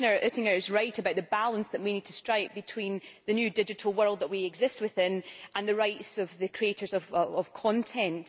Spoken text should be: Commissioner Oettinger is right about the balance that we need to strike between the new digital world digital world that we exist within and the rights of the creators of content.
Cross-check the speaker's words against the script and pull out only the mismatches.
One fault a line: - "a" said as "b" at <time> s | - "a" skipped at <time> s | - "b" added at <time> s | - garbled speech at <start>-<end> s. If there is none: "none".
- "digital world" skipped at 4.2 s